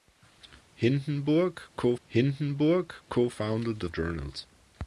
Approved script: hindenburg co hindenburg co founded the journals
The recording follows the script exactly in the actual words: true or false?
true